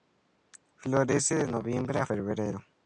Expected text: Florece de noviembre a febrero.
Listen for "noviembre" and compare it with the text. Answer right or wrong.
right